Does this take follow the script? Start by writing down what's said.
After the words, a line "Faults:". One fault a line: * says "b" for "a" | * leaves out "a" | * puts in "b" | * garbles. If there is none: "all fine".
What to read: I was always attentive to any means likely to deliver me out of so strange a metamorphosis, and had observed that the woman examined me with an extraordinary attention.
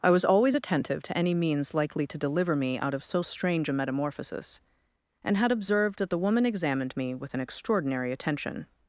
I was always attentive to any means likely to deliver me out of so strange a metamorphosis, and had observed that the woman examined me with an extraordinary attention.
Faults:
all fine